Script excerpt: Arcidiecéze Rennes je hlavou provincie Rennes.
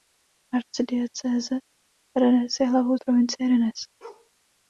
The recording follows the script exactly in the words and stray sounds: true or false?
false